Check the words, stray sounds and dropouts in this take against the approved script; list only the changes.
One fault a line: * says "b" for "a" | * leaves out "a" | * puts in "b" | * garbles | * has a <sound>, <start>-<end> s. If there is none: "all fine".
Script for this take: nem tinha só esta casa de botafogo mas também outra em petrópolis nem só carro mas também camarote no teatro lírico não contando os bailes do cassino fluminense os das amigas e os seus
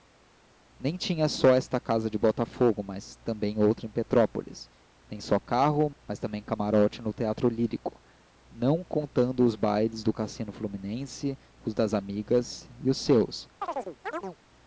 * has a chirp, 13.6-14.4 s